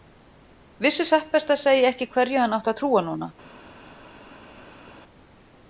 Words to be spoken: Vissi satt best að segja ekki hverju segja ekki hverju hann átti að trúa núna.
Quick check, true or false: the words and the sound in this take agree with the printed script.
false